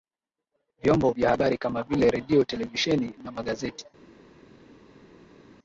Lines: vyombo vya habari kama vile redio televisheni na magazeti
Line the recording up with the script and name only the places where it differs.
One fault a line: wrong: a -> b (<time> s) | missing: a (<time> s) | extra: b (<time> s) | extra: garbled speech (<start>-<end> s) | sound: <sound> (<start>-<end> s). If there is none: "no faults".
no faults